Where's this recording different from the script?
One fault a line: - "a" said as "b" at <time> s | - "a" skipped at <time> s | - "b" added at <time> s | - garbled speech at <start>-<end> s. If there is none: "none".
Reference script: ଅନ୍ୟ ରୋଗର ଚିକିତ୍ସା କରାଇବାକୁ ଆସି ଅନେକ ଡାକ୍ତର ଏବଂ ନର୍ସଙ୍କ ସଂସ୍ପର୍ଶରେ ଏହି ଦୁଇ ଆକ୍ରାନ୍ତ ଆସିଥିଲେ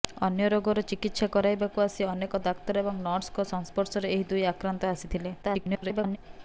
- garbled speech at 5.4-6.2 s